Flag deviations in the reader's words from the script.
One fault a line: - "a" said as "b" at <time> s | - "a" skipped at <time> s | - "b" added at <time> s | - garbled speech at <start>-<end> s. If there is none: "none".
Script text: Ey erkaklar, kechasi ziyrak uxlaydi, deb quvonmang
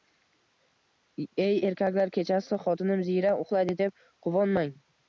- "xotinim" added at 2.7 s